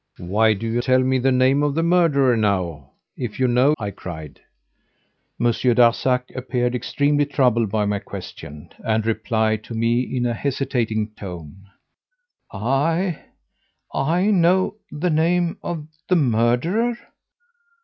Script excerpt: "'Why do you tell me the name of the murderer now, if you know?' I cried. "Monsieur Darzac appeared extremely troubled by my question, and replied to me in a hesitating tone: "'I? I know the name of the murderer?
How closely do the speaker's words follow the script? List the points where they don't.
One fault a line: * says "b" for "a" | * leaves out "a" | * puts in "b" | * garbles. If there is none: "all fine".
all fine